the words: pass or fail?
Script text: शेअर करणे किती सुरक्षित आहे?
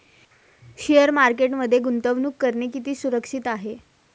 fail